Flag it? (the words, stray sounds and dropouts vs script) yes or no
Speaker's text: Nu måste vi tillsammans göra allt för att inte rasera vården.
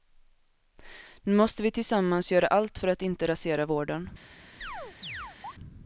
yes